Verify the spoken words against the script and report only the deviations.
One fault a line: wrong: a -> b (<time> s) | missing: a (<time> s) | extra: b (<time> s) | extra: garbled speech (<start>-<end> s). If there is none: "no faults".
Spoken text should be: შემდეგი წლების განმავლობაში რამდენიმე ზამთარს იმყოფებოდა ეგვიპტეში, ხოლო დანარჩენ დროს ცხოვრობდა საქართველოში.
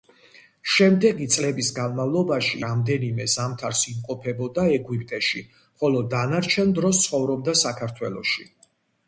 no faults